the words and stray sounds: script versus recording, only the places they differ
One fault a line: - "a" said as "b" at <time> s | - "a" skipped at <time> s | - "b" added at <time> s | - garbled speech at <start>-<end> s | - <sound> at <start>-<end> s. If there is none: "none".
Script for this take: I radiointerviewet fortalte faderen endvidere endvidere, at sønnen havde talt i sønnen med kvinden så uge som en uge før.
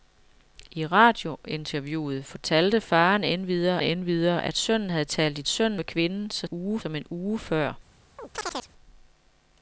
- chirp at 8.2-8.7 s